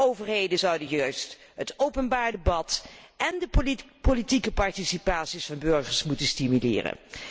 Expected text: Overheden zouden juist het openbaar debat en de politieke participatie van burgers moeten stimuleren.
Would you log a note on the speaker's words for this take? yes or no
no